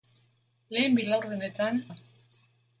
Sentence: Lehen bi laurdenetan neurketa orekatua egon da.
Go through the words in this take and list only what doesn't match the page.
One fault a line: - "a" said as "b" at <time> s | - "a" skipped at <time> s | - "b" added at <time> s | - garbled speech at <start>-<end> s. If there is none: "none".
- "neurketa orekatua egon" skipped at 1.8 s